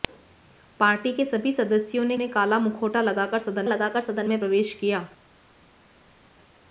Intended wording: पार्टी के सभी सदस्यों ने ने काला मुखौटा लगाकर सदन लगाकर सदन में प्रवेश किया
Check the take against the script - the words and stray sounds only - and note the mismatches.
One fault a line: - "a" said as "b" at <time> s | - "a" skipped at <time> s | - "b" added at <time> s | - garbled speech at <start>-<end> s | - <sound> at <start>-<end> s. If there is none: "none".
none